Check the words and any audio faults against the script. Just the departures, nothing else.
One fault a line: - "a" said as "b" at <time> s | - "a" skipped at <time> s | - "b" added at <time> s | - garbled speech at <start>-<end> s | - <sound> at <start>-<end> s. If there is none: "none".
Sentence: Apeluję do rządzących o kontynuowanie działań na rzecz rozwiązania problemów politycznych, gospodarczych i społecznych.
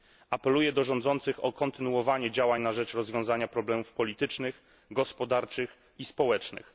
none